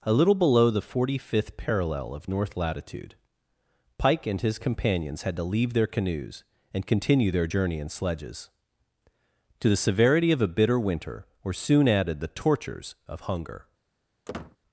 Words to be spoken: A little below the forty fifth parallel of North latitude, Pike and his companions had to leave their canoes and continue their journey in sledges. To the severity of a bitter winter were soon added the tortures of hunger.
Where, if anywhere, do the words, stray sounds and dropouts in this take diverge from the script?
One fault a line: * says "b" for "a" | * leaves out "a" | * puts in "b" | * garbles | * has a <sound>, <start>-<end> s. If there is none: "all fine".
* has a squeak, 14.3-14.6 s